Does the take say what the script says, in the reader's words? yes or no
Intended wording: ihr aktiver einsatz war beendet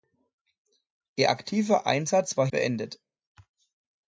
yes